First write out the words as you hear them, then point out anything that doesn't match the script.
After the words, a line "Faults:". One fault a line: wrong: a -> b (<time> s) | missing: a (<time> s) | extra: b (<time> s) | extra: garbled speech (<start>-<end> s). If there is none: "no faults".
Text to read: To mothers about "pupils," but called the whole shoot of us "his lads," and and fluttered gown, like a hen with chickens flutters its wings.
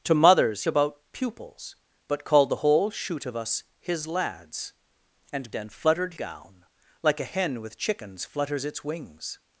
To mothers about "pupils," but called the whole shoot of us "his lads," and and fluttered gown, like a hen with chickens flutters its wings.
Faults:
no faults